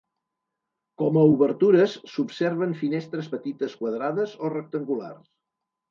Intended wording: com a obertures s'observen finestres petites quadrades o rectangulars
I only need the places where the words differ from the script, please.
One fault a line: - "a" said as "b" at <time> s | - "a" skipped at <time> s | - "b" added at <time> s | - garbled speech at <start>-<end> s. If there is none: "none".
none